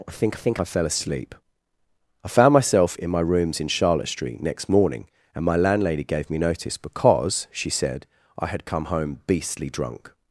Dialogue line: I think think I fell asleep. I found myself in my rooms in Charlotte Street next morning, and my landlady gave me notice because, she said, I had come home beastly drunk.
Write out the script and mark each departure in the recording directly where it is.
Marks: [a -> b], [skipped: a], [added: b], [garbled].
I think think I fell asleep. I found myself in my rooms in Charlotte Street next morning, and my landlady gave me notice because, she said, I had come home beastly drunk.